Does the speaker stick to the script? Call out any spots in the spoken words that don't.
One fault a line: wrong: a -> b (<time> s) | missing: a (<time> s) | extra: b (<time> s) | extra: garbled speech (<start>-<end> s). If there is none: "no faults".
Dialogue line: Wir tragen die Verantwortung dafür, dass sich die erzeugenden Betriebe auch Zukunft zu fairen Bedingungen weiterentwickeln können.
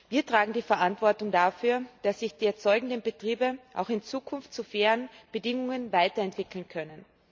extra: in (3.9 s)